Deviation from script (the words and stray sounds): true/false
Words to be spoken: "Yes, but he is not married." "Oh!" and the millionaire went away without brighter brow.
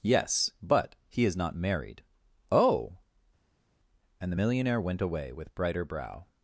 true